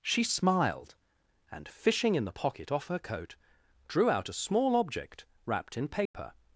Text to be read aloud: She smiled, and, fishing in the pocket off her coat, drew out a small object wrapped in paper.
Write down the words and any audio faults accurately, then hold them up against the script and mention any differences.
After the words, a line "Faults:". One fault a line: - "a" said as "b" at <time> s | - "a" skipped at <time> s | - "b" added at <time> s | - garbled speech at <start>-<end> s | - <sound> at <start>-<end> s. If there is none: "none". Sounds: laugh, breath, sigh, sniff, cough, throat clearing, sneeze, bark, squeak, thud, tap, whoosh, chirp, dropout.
She smiled, and, fishing in the pocket off her coat, drew out a small object wrapped in paper.
Faults:
- dropout at 6.1-6.1 s